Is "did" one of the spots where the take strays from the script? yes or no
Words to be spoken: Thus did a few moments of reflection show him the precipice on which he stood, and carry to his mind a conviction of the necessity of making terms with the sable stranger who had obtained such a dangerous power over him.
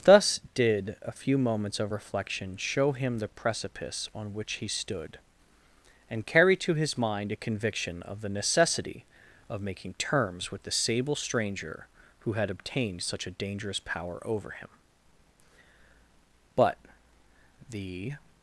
no